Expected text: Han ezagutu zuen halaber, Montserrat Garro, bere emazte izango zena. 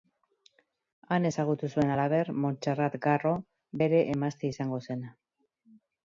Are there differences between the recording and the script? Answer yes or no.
no